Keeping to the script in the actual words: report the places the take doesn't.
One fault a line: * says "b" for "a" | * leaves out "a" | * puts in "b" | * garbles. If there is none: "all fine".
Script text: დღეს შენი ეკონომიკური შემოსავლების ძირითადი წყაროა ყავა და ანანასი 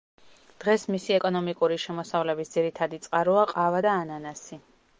* says "მისი" for "შენი"